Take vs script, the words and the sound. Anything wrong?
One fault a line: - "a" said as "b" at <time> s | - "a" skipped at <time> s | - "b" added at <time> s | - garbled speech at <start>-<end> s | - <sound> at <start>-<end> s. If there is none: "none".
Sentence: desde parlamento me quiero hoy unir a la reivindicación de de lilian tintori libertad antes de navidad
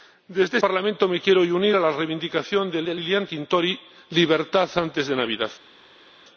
none